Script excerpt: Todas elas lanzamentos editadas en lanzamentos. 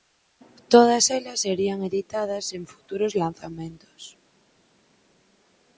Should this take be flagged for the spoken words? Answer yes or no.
yes